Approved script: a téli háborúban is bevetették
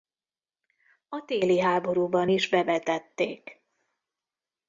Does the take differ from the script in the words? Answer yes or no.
no